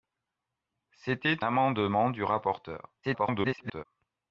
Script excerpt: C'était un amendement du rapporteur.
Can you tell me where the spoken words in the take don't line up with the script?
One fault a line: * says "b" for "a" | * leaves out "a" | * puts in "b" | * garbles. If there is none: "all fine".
* leaves out "un"
* garbles